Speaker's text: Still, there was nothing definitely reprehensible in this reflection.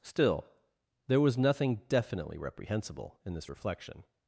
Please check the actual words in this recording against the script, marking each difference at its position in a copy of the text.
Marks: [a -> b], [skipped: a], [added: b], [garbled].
Still, there was nothing definitely reprehensible in this reflection.